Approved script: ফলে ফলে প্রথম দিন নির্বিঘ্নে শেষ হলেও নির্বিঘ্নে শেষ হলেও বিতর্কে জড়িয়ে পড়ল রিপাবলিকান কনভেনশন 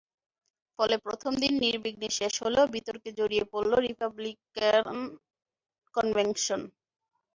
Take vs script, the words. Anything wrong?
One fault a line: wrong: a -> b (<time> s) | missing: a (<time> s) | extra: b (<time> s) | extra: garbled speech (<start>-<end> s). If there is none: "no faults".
missing: ফলে (0.9 s)
missing: নির্বিঘ্নে শেষ হলেও (2.6 s)